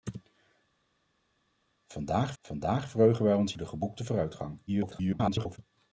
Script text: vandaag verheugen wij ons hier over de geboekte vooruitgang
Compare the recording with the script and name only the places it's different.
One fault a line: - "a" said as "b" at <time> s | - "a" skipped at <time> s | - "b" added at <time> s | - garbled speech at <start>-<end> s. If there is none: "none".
- "vandaag" added at 2.4 s
- "hier over" skipped at 3.5 s
- garbled speech at 4.7-5.6 s